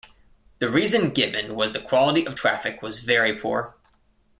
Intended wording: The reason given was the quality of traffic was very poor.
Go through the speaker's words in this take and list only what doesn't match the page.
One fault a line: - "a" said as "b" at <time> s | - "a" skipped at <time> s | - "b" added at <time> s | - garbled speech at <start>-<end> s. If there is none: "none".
none